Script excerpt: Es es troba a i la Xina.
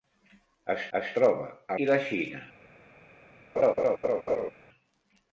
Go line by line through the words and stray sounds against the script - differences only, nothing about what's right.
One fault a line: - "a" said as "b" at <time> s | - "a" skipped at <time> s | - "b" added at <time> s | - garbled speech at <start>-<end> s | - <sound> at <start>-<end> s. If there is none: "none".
- laugh at 3.6-4.5 s